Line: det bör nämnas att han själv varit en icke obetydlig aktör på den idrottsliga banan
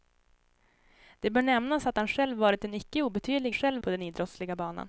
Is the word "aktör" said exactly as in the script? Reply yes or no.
no